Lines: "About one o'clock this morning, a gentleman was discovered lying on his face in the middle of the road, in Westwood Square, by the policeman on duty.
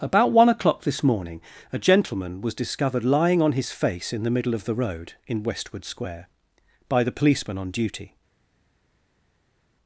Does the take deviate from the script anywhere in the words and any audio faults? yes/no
no